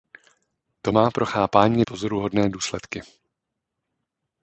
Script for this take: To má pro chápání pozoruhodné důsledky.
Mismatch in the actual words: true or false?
false